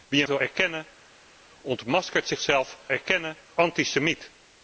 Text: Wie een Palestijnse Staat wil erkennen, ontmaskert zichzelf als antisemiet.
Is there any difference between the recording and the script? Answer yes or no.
yes